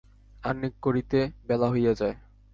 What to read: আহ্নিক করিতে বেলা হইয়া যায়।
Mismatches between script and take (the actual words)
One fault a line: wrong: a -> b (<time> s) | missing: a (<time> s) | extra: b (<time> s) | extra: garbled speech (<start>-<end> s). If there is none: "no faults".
no faults